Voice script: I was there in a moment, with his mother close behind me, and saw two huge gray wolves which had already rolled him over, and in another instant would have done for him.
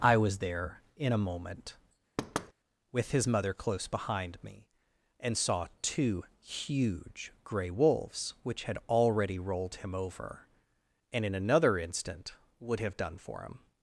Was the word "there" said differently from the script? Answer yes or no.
no